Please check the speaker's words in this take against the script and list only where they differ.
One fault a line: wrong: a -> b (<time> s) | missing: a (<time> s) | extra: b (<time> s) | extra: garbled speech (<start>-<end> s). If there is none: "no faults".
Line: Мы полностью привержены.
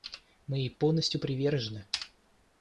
extra: ей (0.6 s)